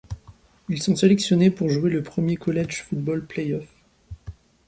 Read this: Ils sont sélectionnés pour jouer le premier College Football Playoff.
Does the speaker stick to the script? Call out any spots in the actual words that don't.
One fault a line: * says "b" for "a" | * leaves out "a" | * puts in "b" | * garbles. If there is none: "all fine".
all fine